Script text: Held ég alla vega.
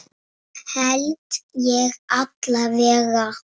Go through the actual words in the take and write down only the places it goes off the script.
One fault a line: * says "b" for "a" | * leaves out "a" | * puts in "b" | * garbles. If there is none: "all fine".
all fine